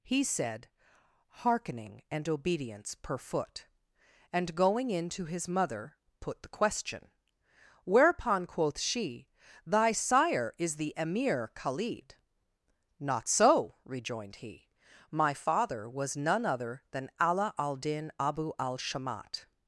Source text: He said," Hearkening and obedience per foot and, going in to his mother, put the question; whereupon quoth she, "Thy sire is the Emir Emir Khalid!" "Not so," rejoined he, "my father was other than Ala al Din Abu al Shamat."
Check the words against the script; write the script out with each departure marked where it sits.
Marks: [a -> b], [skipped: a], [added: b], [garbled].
He said," Hearkening and obedience per foot and, going in to his mother, put the question; whereupon quoth she, "Thy sire is the Emir [skipped: Emir] Khalid!" "Not so," rejoined he, "my father was [added: none] other than Ala al Din Abu al Shamat."